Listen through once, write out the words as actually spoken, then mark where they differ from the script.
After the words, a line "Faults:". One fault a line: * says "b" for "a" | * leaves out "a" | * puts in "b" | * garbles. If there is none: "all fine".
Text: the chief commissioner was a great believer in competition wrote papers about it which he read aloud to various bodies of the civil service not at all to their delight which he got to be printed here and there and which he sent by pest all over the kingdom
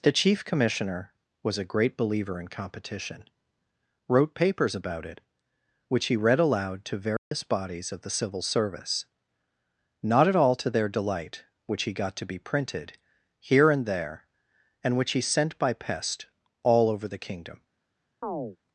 the chief commissioner was a great believer in competition wrote papers about it which he read aloud to various bodies of the civil service not at all to their delight which he got to be printed here and there and which he sent by pest all over the kingdom
Faults:
all fine